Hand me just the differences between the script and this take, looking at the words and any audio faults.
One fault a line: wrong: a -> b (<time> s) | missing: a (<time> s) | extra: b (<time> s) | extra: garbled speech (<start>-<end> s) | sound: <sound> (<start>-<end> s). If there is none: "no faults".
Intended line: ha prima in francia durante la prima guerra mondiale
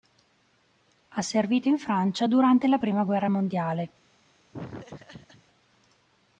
wrong: prima -> servito (1.2 s)
sound: laugh (4.5-5.4 s)